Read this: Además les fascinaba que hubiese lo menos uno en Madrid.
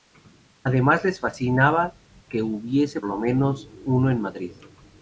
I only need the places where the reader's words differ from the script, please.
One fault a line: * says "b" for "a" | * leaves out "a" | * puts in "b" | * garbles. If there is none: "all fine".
all fine